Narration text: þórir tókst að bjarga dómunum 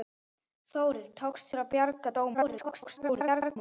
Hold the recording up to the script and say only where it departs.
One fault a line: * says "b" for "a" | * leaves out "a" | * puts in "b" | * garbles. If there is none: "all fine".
* garbles